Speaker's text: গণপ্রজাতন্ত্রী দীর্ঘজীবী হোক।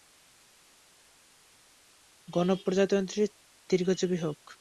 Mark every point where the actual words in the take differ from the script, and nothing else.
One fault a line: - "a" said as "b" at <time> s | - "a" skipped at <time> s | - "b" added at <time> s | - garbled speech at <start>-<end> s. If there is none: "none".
none